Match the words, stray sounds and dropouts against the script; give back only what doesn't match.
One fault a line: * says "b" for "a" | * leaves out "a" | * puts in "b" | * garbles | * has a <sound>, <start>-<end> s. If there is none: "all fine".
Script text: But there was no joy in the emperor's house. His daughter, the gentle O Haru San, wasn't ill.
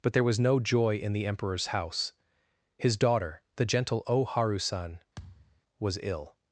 * has a thud, 5.2-5.6 s
* says "was" for "wasn't"